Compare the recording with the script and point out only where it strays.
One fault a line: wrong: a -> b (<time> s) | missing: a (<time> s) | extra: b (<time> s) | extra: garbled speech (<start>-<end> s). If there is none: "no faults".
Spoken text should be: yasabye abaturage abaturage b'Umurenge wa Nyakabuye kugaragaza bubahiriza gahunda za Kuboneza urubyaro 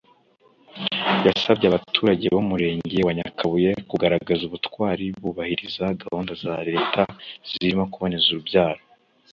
missing: abaturage (2.2 s)
extra: ubutwari (4.4 s)
extra: Leta zirimo (6.7 s)